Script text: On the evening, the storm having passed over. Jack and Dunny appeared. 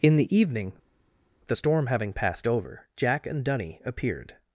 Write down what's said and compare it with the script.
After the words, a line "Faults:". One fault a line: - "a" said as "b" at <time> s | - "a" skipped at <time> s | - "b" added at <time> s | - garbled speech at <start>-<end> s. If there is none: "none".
In the evening, the storm having passed over. Jack and Dunny appeared.
Faults:
- "On" said as "In" at 0.0 s